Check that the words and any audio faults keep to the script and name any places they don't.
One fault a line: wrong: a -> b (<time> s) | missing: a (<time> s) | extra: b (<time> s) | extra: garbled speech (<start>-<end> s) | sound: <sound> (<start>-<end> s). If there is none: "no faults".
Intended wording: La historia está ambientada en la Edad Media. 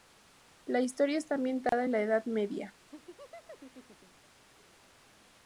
sound: dropout (1.7-1.7 s)
sound: laugh (2.9-4.3 s)